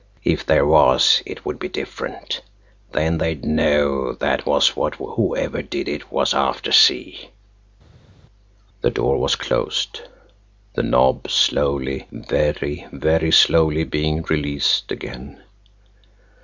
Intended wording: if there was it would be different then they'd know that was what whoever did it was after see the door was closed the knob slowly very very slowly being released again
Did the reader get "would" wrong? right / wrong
right